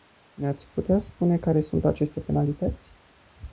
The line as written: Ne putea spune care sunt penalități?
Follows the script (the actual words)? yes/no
no